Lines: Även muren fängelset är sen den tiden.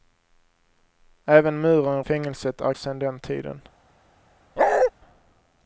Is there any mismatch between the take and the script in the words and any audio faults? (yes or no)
yes